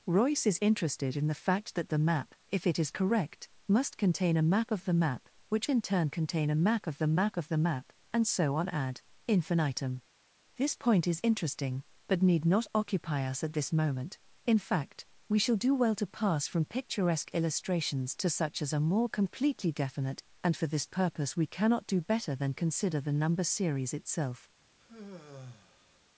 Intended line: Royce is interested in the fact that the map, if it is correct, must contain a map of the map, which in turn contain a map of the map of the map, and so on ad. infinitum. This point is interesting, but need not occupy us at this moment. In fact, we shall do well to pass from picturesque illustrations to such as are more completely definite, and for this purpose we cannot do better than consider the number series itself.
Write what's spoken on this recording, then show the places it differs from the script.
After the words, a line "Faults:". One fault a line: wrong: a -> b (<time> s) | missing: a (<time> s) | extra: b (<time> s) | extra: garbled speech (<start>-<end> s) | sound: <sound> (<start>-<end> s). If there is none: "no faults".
Royce is interested in the fact that the map, if it is correct, must contain a map of the map, which in turn contain a map of the map of the map, and so on ad. infinitum. This point is interesting, but need not occupy us at this moment. In fact, we shall do well to pass from picturesque illustrations to such as are more completely definite, and for this purpose we cannot do better than consider the number series itself.
Faults:
sound: sigh (24.8-26.0 s)